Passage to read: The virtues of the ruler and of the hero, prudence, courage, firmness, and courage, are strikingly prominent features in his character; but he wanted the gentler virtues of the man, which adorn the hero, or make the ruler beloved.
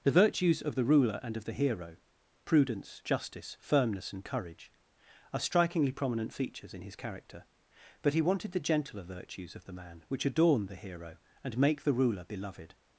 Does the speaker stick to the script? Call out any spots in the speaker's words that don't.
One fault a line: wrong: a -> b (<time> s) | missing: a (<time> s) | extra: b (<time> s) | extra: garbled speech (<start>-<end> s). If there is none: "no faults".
wrong: courage -> justice (3.0 s)
wrong: or -> and (11.4 s)